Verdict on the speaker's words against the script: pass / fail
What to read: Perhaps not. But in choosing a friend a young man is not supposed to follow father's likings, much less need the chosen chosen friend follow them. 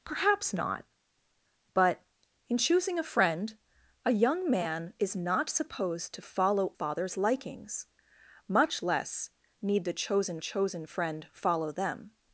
pass